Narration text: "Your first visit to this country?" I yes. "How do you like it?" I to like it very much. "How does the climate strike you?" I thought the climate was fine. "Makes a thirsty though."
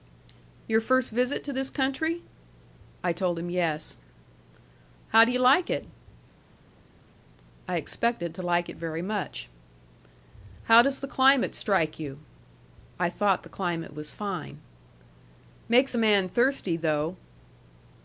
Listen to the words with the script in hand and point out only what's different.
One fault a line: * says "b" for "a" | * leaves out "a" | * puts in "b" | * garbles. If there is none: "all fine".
* puts in "told him"
* puts in "expected"
* puts in "man"